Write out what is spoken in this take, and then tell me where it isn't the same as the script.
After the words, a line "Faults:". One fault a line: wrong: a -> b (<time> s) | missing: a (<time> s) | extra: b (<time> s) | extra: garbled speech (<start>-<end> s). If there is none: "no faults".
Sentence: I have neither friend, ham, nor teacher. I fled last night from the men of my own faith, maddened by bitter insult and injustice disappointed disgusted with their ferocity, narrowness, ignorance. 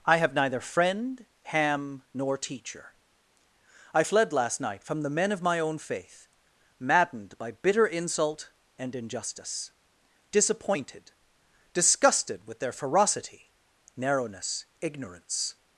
I have neither friend, ham, nor teacher. I fled last night from the men of my own faith, maddened by bitter insult and injustice disappointed disgusted with their ferocity, narrowness, ignorance.
Faults:
no faults